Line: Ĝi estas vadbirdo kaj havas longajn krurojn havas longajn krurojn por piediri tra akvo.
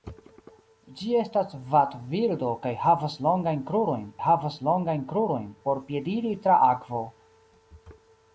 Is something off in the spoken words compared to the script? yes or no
no